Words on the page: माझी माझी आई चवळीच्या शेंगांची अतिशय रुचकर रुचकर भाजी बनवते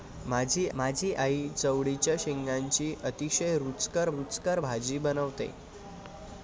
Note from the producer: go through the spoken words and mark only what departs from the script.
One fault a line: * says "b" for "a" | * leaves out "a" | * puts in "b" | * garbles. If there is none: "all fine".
all fine